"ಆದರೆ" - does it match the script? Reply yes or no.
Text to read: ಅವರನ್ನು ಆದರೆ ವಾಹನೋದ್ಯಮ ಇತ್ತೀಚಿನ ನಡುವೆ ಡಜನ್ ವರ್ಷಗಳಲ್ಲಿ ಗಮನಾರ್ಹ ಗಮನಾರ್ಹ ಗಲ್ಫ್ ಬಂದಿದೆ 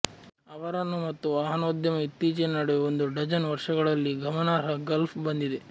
no